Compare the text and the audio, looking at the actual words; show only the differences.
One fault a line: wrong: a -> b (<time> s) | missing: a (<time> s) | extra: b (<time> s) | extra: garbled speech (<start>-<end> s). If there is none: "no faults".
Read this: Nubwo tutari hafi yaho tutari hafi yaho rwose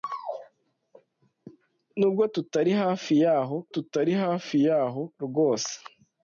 no faults